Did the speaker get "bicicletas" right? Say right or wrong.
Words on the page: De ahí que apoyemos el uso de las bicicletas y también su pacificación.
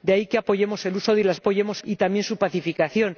wrong